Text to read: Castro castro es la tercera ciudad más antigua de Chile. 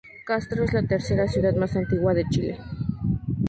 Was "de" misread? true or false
false